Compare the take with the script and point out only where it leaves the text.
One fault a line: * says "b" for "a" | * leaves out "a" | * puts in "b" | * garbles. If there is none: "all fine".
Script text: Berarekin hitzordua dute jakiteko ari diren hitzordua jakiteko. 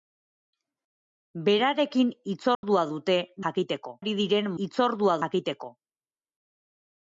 all fine